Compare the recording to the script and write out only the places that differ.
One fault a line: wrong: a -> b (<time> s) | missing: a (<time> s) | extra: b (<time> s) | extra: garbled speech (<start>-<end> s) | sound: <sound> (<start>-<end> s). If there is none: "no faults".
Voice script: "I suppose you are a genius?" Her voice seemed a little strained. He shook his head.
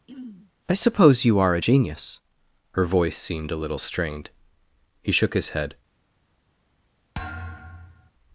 sound: throat clearing (0.1-0.5 s)
sound: thud (7.1-8.1 s)